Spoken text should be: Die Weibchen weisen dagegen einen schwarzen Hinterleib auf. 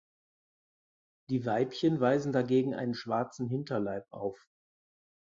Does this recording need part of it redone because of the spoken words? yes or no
no